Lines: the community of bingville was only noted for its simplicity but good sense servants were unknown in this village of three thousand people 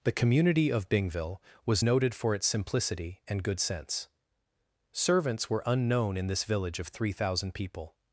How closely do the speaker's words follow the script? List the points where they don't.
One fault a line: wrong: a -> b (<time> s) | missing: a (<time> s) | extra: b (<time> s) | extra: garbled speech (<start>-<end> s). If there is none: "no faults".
missing: only (1.8 s)
wrong: but -> and (3.3 s)